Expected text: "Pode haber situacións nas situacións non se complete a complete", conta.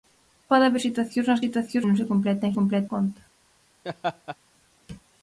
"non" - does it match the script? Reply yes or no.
yes